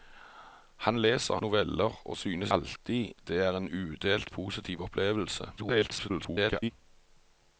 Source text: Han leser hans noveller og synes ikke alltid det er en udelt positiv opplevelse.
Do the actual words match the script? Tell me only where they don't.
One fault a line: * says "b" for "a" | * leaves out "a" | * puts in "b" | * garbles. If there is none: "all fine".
* leaves out "hans"
* leaves out "ikke"
* garbles